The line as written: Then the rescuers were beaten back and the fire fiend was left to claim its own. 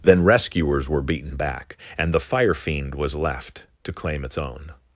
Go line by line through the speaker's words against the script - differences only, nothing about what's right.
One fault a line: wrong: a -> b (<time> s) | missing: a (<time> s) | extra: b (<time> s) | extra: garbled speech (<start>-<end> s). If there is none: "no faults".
missing: the (0.2 s)